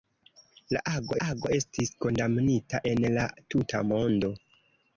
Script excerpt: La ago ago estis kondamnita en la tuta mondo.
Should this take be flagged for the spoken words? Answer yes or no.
no